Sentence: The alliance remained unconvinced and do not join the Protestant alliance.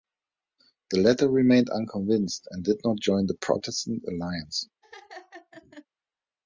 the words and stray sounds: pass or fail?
fail